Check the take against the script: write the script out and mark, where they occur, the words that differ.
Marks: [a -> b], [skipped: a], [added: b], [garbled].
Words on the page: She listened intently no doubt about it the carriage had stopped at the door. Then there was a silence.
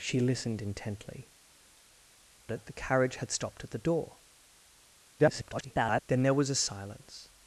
She listened intently [skipped: no doubt about] it the carriage had stopped at the door. [garbled] Then there was a silence.